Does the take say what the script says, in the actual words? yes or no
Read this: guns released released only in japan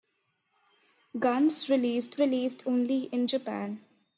yes